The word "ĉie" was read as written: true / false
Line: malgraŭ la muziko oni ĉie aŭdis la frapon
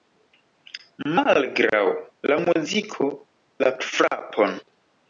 false